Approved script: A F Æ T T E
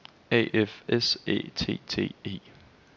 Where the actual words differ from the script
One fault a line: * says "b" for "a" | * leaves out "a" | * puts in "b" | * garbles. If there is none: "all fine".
* puts in "S"